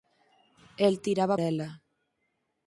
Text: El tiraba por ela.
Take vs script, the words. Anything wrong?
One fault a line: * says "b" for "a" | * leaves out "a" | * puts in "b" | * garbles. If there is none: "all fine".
* leaves out "por"